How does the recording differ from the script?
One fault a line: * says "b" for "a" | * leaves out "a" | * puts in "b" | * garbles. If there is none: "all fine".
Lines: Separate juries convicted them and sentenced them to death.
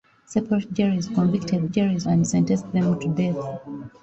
* says "juries" for "them"